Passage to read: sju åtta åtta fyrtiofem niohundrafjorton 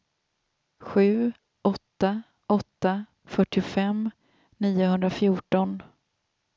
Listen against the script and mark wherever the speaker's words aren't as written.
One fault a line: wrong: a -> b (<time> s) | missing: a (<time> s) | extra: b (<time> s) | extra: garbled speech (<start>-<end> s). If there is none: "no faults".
no faults